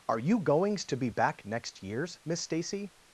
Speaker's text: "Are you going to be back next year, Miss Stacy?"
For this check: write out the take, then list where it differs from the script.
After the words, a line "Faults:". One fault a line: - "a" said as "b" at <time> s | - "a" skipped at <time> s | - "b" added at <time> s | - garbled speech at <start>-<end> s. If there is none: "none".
"Are you goings to be back next years, Miss Stacy?"
Faults:
- "going" said as "goings" at 0.4 s
- "year" said as "years" at 1.8 s